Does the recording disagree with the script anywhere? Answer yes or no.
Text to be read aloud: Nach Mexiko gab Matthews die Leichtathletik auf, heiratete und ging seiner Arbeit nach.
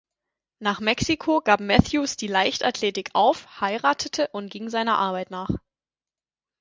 no